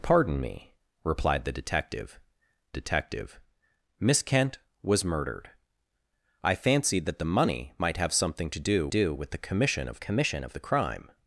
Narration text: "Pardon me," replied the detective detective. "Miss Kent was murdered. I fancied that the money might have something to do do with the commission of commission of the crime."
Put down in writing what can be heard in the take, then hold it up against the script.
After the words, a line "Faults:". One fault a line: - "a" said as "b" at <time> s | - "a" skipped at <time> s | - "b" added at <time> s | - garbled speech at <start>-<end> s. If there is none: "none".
"Pardon me," replied the detective detective. "Miss Kent was murdered. I fancied that the money might have something to do do with the commission of commission of the crime."
Faults:
none